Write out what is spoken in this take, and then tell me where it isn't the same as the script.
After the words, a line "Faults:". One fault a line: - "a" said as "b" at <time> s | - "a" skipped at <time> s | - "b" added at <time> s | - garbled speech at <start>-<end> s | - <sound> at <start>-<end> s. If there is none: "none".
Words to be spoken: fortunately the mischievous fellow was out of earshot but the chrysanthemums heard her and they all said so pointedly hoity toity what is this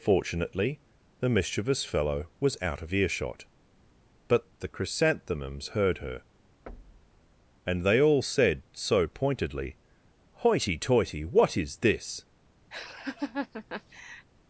fortunately the mischievous fellow was out of earshot but the chrysanthemums heard her and they all said so pointedly hoity toity what is this
Faults:
- thud at 6.7-7.2 s
- laugh at 12.7-14.3 s